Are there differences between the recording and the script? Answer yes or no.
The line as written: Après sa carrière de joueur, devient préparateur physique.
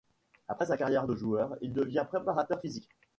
yes